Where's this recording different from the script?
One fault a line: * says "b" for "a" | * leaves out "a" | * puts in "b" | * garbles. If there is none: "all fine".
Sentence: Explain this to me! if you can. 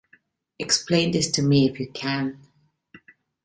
all fine